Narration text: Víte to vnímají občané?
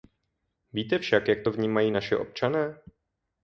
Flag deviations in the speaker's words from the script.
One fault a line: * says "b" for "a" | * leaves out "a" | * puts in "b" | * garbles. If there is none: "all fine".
* puts in "však jak"
* puts in "naši"